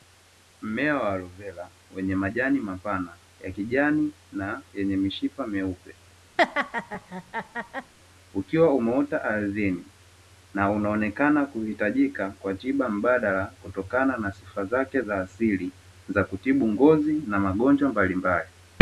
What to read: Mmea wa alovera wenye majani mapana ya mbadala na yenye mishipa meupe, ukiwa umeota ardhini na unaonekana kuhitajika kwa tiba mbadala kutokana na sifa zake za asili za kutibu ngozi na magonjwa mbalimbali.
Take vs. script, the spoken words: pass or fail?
fail